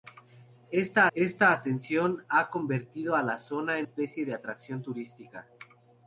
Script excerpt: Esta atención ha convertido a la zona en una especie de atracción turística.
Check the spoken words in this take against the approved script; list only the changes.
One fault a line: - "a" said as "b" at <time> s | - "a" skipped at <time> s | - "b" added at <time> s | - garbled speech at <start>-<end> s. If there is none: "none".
- "esta" added at 1.1 s
- "una" skipped at 3.9 s